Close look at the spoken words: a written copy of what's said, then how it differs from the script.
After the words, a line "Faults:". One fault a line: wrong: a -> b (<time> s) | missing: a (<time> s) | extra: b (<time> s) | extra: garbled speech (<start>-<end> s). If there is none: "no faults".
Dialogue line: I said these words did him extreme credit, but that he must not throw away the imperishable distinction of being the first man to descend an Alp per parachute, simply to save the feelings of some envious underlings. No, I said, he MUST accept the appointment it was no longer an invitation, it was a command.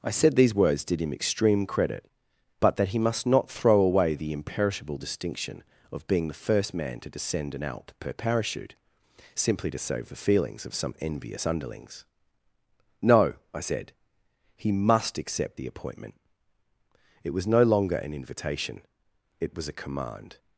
I said these words did him extreme credit, but that he must not throw away the imperishable distinction of being the first man to descend an Alp per parachute, simply to save the feelings of some envious underlings. No, I said, he MUST accept the appointment it was no longer an invitation, it was a command.
Faults:
no faults